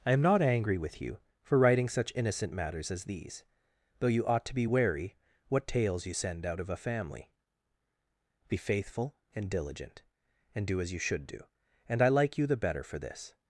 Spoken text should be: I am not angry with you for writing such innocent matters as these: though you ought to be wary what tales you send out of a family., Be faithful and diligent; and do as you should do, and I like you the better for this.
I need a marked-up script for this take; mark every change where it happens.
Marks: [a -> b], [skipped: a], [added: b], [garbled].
I am not angry with you for writing such innocent matters as these: though you ought to be wary what tales you send out of a family., Be faithful and diligent; and do as you should do, and I like you the better for this.